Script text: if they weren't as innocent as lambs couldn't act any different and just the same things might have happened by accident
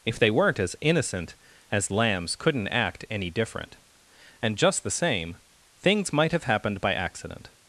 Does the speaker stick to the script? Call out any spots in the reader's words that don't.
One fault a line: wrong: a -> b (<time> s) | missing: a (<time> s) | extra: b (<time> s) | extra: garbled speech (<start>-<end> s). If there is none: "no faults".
no faults